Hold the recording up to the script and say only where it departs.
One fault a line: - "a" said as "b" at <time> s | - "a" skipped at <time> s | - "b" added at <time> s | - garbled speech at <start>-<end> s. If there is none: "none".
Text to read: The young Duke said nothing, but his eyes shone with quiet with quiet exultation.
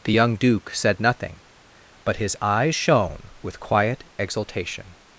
- "with quiet" skipped at 4.0 s